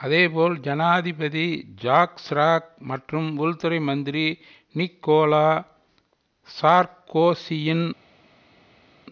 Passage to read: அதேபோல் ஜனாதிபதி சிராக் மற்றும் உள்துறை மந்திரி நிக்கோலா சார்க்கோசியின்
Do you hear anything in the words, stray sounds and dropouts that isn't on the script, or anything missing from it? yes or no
yes